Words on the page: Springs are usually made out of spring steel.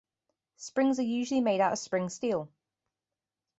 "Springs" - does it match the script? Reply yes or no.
yes